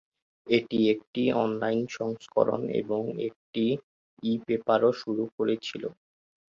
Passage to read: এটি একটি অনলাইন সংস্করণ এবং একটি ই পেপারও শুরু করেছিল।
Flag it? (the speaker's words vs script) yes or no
no